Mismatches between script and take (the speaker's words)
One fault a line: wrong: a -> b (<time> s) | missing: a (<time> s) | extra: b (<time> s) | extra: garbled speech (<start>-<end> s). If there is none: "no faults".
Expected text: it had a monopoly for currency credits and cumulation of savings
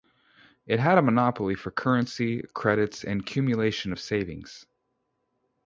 no faults